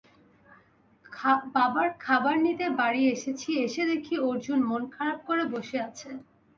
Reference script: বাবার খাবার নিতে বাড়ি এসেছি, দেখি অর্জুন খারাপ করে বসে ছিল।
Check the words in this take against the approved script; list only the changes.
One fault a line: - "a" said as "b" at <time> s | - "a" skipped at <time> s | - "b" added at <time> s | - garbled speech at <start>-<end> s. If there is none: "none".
- "এসে" added at 3.6 s
- "মন" added at 4.7 s
- "ছিল" said as "আছে" at 5.9 s